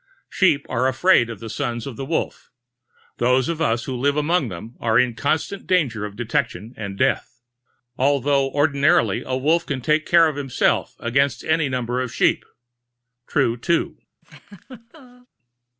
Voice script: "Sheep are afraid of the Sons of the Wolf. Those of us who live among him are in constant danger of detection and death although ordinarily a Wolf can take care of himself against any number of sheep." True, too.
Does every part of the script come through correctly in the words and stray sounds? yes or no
no